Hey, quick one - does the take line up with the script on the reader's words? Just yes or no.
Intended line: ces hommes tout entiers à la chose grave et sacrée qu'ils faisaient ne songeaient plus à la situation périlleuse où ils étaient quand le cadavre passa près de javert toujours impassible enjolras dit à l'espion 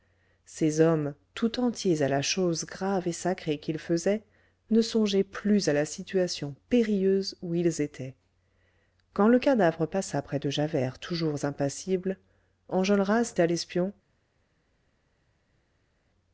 no